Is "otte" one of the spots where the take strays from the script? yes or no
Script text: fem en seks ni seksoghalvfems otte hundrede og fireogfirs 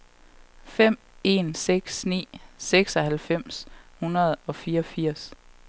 yes